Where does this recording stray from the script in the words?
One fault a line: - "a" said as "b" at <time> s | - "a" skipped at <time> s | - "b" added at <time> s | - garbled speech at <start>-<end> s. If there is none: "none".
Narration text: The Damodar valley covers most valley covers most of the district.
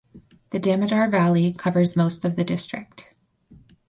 - "valley covers most" skipped at 2.2 s